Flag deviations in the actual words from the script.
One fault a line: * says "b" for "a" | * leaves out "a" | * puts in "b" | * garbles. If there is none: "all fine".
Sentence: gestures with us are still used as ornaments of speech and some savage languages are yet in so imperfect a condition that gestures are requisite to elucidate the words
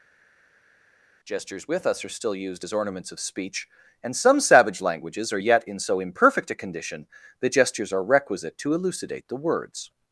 all fine